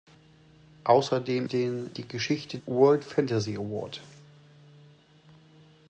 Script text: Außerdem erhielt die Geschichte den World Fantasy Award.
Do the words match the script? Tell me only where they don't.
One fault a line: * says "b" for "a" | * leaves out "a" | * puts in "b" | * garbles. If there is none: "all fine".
* says "den" for "erhielt"
* leaves out "den"